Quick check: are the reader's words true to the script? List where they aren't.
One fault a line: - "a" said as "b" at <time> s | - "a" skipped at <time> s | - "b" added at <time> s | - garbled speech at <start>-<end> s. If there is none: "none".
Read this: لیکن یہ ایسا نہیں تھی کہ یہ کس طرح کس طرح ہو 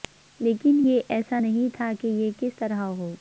- "تھی" said as "تھا" at 1.7 s
- "کس طرح" skipped at 2.8 s